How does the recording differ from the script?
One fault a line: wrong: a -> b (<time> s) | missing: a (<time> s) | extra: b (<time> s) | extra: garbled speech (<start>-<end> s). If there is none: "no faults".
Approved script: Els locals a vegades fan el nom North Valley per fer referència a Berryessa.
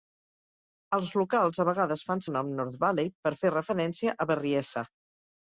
no faults